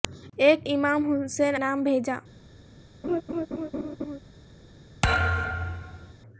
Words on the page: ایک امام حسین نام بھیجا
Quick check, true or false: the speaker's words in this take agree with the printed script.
true